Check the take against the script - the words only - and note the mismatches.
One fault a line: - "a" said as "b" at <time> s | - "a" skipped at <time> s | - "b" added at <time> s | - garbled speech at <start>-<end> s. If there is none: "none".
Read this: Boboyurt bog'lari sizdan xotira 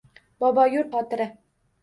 - "bog'lari sizdan" skipped at 0.9 s